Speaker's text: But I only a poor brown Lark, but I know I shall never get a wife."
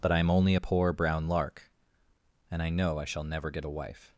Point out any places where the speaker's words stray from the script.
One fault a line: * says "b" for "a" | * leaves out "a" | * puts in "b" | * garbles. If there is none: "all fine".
* puts in "am"
* says "and" for "but"